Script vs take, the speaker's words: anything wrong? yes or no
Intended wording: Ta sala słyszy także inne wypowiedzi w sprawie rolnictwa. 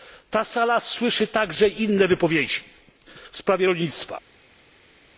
no